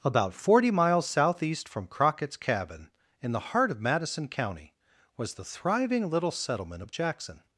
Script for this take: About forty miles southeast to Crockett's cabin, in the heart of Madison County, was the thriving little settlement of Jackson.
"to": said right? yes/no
no